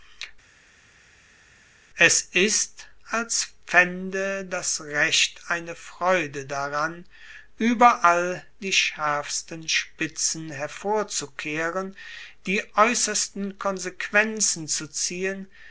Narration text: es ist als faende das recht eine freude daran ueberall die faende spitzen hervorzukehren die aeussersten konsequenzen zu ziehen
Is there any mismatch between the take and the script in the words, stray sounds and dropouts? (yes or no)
yes